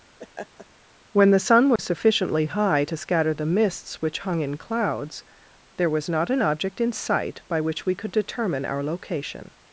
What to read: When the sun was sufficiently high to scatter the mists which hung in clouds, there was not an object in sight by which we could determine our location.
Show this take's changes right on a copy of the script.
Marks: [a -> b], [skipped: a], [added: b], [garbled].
When the sun was sufficiently high to scatter the mists which hung in clouds, there was not an object in sight by which we could determine our location.